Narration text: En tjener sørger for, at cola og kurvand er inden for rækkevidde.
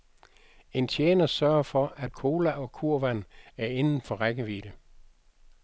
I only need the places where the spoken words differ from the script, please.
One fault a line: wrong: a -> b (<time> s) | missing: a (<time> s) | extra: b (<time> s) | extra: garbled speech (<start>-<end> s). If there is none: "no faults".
no faults